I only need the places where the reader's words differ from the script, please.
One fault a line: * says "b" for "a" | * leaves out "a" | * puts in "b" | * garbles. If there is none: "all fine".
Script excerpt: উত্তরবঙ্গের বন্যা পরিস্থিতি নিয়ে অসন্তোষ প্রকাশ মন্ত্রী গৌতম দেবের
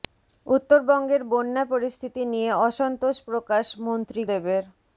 * leaves out "গৌতম"